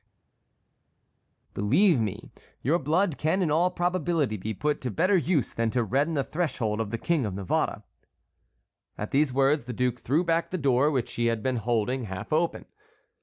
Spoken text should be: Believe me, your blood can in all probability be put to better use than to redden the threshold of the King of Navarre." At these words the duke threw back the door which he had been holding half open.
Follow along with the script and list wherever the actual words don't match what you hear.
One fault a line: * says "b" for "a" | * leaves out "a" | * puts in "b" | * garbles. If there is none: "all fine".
all fine